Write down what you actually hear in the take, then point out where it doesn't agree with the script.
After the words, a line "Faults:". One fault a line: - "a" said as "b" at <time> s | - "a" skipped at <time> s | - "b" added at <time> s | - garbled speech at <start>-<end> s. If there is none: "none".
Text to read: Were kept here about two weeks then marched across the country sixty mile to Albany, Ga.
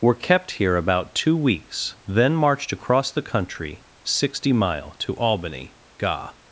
Were kept here about two weeks then marched across the country sixty mile to Albany, Ga.
Faults:
none